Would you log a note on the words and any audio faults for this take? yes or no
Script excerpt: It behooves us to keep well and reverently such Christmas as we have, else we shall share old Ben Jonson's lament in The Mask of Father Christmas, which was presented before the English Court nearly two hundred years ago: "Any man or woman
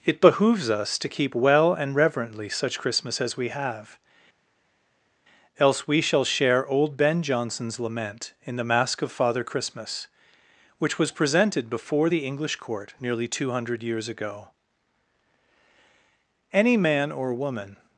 no